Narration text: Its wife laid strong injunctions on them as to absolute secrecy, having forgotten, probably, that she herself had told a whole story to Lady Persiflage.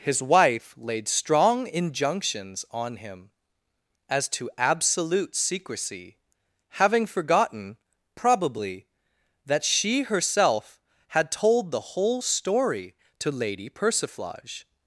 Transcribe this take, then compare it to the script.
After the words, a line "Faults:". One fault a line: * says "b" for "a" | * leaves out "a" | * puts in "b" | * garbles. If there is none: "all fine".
His wife laid strong injunctions on him as to absolute secrecy, having forgotten, probably, that she herself had told the whole story to Lady Persiflage.
Faults:
* says "His" for "Its"
* says "him" for "them"
* says "the" for "a"